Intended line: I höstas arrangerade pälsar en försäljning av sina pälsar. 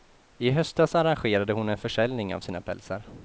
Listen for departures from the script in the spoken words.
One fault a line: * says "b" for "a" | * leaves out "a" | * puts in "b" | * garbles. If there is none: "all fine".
* says "hon" for "pälsar"